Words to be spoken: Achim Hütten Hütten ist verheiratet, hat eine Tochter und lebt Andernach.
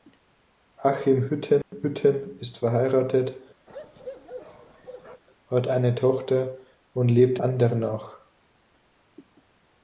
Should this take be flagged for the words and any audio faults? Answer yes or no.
yes